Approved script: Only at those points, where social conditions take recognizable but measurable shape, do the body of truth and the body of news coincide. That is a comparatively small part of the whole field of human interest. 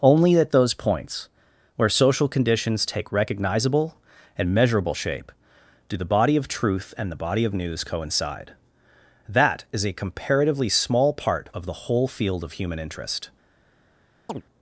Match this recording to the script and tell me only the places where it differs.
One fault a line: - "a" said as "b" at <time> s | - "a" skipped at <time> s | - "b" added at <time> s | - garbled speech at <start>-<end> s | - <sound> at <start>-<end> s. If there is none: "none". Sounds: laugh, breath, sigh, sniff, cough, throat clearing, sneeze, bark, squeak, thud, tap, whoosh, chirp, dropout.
- "but" said as "and" at 4.3 s
- chirp at 14.3-14.4 s